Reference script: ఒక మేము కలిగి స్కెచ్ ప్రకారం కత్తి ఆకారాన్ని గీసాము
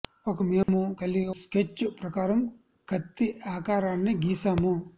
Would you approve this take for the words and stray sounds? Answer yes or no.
no